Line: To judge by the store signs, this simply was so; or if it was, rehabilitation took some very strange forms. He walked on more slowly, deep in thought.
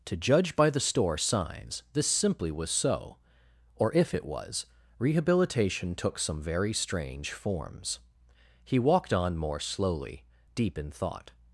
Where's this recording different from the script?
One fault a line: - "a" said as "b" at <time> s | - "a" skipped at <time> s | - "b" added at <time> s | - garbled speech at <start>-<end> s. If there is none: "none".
none